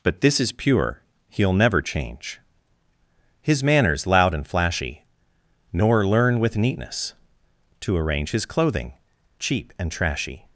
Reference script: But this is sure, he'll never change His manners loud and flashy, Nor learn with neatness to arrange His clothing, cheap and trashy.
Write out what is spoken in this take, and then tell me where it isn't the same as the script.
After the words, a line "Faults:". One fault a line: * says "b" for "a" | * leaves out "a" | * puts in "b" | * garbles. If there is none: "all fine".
But this is pure, he'll never change His manners loud and flashy, Nor learn with neatness to arrange His clothing, cheap and trashy.
Faults:
* says "pure" for "sure"